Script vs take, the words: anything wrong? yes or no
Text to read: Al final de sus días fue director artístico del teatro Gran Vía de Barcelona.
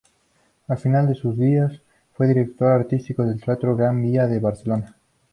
no